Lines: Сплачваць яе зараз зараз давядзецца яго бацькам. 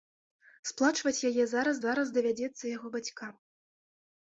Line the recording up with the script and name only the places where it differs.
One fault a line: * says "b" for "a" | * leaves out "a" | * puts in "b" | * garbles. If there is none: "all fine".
all fine